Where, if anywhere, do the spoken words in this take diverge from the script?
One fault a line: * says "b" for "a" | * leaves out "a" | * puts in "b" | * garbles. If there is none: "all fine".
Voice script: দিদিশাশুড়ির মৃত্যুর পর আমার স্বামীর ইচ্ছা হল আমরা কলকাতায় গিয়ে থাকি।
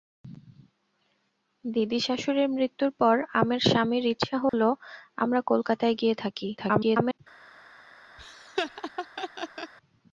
* garbles